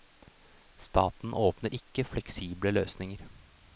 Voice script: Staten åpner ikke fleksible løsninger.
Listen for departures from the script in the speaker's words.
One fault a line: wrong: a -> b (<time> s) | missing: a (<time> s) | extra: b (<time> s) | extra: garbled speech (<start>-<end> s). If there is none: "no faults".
no faults